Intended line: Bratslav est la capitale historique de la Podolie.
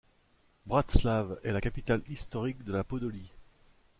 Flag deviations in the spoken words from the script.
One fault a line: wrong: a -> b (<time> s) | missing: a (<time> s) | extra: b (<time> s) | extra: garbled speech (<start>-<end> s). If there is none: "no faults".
no faults